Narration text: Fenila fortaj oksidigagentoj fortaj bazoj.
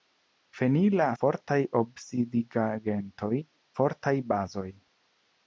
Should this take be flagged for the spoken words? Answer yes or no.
no